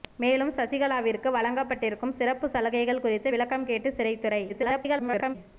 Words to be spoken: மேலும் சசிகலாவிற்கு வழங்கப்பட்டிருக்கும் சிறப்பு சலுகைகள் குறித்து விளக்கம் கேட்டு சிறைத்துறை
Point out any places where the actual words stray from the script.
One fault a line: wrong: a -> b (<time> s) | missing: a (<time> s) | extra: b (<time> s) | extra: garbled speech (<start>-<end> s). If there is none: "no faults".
extra: garbled speech (4.5-5.4 s)